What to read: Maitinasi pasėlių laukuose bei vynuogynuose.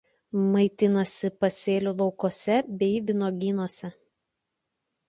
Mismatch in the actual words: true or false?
false